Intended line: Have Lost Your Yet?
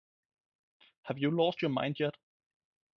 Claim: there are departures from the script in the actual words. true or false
true